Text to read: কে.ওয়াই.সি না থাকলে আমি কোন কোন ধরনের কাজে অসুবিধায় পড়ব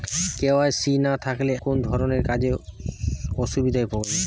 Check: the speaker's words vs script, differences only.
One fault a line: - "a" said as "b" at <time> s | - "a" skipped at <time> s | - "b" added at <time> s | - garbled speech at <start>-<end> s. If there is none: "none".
- "আমি কোন" skipped at 1.5 s